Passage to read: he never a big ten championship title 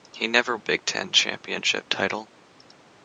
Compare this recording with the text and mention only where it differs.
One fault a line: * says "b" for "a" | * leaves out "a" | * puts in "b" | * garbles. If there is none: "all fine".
all fine